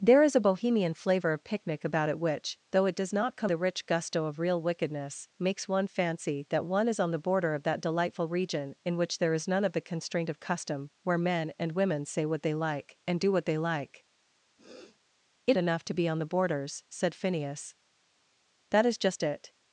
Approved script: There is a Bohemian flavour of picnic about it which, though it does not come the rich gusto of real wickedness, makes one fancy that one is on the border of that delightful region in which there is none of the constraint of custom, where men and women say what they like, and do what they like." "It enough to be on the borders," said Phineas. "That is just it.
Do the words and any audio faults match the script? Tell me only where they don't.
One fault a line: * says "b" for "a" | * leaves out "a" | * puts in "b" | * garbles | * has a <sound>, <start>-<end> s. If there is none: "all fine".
* has a sniff, 14.6-15.0 s